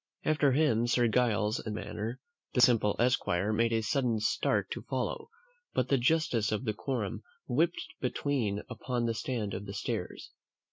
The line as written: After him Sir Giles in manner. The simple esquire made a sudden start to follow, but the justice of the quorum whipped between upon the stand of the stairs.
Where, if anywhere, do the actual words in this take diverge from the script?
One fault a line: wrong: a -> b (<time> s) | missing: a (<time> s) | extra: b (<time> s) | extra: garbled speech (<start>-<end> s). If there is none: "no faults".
no faults